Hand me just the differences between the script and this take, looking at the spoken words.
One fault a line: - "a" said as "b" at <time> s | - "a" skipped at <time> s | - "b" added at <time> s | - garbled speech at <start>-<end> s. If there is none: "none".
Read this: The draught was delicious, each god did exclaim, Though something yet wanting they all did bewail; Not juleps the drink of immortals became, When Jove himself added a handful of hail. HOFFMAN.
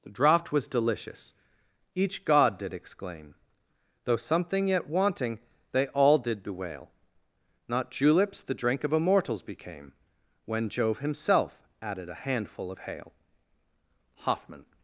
none